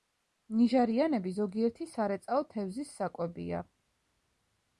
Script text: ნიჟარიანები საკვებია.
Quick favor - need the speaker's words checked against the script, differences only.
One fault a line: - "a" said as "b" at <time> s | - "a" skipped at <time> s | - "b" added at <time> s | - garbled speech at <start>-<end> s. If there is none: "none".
- "ზოგიერთი სარეწაო თევზის" added at 1.4 s